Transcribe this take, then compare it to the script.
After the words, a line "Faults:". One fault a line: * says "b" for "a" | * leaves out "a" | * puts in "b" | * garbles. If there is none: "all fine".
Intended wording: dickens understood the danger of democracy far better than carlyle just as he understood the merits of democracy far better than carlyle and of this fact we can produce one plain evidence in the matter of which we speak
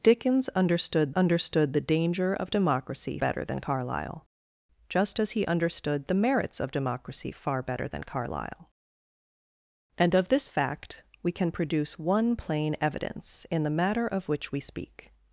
dickens understood understood the danger of democracy better than carlyle just as he understood the merits of democracy far better than carlyle and of this fact we can produce one plain evidence in the matter of which we speak
Faults:
* puts in "understood"
* leaves out "far"